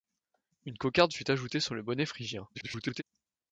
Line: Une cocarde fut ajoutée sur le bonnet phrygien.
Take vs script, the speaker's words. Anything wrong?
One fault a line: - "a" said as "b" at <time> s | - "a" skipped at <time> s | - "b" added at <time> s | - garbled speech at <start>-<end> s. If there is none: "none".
- garbled speech at 2.5-3.0 s